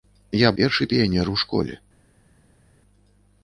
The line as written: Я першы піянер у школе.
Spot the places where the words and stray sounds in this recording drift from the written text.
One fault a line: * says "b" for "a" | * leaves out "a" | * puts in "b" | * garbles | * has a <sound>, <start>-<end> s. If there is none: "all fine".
all fine